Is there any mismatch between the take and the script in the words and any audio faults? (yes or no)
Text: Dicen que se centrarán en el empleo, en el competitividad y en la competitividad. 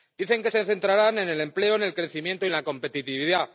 yes